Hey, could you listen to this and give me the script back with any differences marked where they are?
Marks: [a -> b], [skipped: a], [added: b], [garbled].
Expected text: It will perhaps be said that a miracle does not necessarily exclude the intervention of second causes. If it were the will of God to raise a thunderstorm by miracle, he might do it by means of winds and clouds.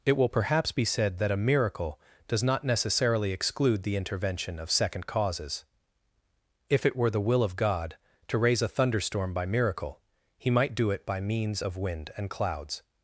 It will perhaps be said that a miracle does not necessarily exclude the intervention of second causes. If it were the will of God to raise a thunderstorm by miracle, he might do it by means of [winds -> wind] and clouds.